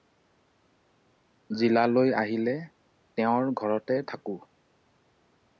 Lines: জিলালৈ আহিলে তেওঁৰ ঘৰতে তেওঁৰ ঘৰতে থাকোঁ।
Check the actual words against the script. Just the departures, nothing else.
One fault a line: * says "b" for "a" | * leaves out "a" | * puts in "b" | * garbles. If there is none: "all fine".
* leaves out "তেওঁৰ ঘৰতে"